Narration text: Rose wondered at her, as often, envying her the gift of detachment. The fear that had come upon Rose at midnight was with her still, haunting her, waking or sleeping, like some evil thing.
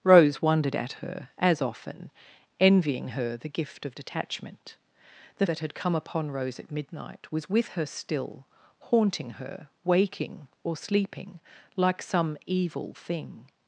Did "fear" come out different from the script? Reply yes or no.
yes